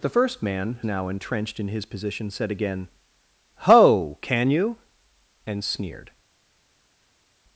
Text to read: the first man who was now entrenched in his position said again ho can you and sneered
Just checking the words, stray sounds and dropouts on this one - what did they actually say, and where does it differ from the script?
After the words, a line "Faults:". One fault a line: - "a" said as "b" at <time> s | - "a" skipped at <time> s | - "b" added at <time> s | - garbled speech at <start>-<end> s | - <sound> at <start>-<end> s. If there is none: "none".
the first man now entrenched in his position said again ho can you and sneered
Faults:
- "who was" skipped at 0.8 s